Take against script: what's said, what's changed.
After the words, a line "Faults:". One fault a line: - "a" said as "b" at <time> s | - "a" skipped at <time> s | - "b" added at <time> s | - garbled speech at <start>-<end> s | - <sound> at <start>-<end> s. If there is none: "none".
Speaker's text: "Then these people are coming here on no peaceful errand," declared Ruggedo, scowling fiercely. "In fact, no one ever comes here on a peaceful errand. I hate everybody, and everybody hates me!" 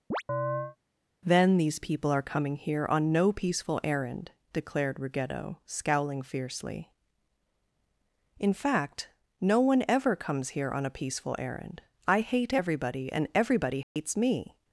"Then these people are coming here on no peaceful errand," declared Ruggedo, scowling fiercely. "In fact, no one ever comes here on a peaceful errand. I hate everybody, and everybody hates me!"
Faults:
- chirp at 0.1-0.8 s
- dropout at 13.8-14.0 s